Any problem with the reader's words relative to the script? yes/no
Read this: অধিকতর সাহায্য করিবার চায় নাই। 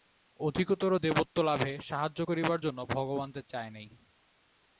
yes